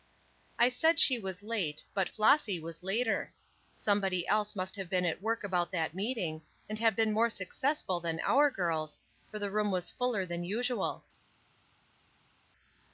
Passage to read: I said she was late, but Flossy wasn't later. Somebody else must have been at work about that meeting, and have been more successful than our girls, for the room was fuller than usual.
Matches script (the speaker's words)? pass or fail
fail